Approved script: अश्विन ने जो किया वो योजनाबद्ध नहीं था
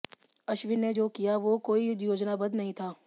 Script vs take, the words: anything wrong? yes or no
yes